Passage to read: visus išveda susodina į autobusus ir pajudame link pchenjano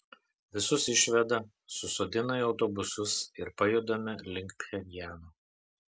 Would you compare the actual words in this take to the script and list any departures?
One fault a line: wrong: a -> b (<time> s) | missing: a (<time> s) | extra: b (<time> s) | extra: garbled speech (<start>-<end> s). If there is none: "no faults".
no faults